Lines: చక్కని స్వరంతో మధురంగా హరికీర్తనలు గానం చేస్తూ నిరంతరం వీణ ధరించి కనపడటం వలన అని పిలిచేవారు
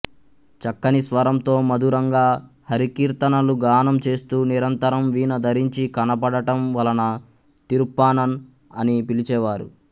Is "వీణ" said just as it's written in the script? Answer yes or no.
yes